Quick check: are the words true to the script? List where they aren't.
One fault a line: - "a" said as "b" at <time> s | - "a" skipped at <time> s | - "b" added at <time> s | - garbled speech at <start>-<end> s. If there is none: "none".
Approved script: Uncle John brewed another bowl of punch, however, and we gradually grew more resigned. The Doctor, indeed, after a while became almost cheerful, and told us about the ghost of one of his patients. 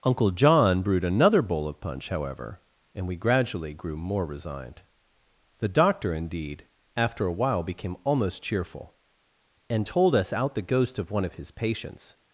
- "about" said as "out" at 10.3 s